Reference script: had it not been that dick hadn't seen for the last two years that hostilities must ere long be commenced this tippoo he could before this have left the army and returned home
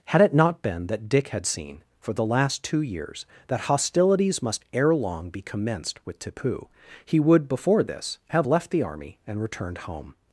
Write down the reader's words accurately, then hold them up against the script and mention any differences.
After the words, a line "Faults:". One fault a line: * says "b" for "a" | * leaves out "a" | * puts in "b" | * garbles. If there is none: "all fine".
had it not been that dick had seen for the last two years that hostilities must ere long be commenced with tippoo he would before this have left the army and returned home
Faults:
* says "had" for "hadn't"
* says "with" for "this"
* says "would" for "could"